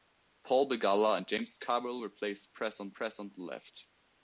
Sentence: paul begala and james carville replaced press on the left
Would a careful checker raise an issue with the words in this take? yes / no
yes